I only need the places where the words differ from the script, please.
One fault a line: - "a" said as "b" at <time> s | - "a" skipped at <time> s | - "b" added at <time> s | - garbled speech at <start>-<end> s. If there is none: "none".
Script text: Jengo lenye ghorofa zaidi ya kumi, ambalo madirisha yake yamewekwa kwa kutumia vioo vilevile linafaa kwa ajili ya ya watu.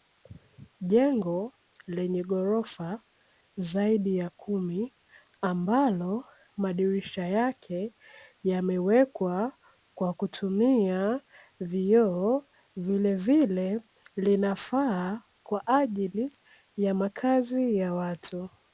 - "makazi" added at 16.9 s